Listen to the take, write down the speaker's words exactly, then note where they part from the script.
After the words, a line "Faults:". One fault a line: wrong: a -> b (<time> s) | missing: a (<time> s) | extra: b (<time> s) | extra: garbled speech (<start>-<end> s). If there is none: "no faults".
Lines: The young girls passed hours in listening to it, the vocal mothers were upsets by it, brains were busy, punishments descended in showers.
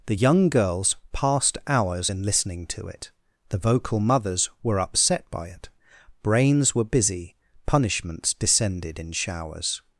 The young girls passed hours in listening to it, the vocal mothers were upset by it, brains were busy, punishments descended in showers.
Faults:
wrong: upsets -> upset (4.8 s)